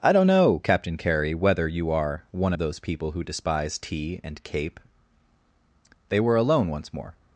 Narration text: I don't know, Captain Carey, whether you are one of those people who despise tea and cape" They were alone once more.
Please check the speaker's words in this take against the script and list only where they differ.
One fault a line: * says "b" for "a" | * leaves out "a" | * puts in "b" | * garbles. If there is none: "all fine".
all fine